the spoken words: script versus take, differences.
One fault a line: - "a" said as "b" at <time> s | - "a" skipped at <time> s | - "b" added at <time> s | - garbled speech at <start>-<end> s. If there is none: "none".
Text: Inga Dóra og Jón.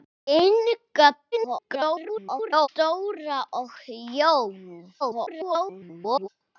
- garbled speech at 1.3-2.7 s
- garbled speech at 5.0-6.3 s